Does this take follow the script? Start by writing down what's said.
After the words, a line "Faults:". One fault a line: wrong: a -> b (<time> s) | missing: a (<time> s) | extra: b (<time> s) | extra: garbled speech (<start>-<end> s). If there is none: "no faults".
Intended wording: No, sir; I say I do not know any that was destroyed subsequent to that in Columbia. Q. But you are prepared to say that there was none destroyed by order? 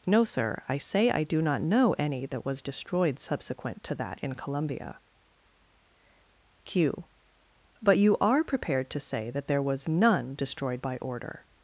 No, sir; I say I do not know any that was destroyed subsequent to that in Columbia. Q. But you are prepared to say that there was none destroyed by order?
Faults:
no faults